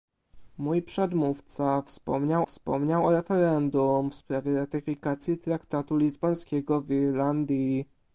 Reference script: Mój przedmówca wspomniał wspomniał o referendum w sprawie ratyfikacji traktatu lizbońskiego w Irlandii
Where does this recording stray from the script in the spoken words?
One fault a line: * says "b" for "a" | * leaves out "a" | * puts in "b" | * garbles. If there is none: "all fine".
all fine